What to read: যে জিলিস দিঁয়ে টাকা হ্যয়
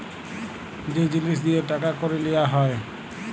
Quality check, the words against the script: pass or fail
fail